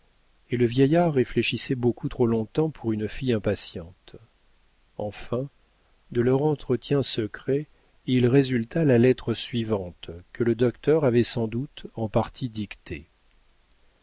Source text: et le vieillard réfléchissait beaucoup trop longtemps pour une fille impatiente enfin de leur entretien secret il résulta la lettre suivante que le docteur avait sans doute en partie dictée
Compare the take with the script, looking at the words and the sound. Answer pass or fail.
pass